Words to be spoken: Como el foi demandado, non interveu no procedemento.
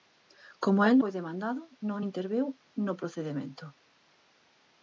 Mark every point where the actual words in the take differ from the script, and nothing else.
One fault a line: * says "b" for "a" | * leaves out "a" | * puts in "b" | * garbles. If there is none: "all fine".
all fine